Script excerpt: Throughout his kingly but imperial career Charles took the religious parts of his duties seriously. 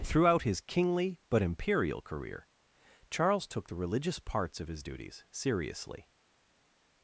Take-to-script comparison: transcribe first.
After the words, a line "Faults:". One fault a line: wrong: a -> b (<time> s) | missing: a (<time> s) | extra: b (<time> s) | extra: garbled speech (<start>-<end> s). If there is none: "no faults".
Throughout his kingly but imperial career Charles took the religious parts of his duties seriously.
Faults:
no faults